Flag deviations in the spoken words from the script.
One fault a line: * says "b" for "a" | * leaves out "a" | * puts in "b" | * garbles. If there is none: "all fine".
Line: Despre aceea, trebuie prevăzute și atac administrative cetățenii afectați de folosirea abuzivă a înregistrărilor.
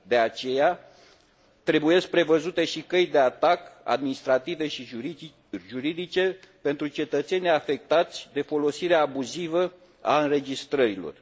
* says "De" for "Despre"
* puts in "căi de"
* puts in "și juridice pentru"